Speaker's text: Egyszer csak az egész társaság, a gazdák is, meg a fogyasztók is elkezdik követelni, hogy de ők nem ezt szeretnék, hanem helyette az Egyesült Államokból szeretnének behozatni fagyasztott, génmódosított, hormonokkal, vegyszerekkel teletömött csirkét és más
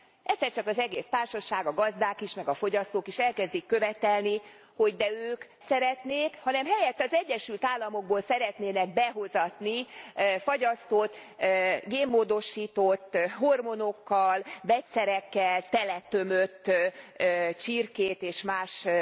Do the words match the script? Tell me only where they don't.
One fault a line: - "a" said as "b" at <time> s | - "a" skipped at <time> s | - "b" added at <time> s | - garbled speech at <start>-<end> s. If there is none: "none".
- "nem ezt" skipped at 5.4 s